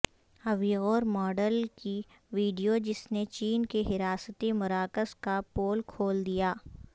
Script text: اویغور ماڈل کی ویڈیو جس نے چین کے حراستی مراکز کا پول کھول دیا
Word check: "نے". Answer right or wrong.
right